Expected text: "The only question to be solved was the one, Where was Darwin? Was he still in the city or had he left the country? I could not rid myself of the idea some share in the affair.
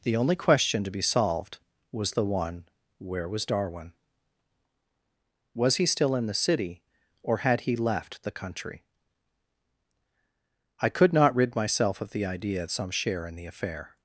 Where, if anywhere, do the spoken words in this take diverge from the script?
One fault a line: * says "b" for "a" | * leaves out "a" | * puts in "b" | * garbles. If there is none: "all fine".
all fine